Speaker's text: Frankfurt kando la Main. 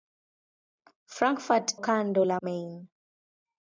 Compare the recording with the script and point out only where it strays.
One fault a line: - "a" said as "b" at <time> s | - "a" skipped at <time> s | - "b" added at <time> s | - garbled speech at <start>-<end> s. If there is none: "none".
none